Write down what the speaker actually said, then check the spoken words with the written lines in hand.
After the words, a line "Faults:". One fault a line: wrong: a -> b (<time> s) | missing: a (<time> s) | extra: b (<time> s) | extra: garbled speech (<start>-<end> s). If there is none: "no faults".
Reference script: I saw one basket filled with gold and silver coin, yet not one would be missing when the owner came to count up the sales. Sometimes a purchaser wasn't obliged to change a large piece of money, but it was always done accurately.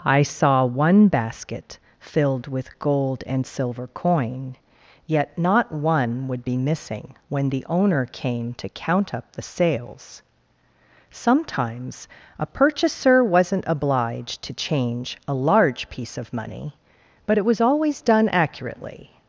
I saw one basket filled with gold and silver coin, yet not one would be missing when the owner came to count up the sales. Sometimes a purchaser wasn't obliged to change a large piece of money, but it was always done accurately.
Faults:
no faults